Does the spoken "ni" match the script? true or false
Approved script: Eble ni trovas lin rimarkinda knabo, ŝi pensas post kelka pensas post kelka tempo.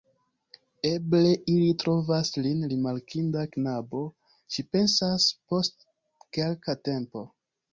false